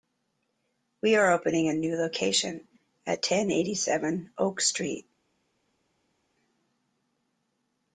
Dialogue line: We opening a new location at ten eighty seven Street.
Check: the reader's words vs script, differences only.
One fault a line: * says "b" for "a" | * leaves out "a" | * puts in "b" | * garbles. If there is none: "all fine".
* puts in "are"
* puts in "Oak"